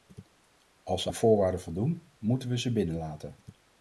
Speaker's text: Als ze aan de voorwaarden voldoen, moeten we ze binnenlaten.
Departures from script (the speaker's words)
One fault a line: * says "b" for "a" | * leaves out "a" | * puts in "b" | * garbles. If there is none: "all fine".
* leaves out "aan"